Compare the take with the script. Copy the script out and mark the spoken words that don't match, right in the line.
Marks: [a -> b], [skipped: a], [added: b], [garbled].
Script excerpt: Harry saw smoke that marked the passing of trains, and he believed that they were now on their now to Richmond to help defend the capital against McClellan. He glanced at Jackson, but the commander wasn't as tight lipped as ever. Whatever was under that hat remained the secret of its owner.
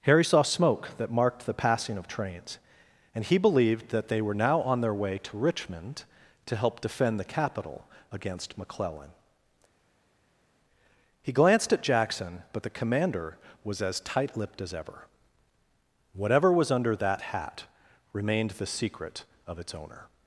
Harry saw smoke that marked the passing of trains, and he believed that they were now on their [now -> way] to Richmond to help defend the capital against McClellan. He glanced at Jackson, but the commander [wasn't -> was] as tight lipped as ever. Whatever was under that hat remained the secret of its owner.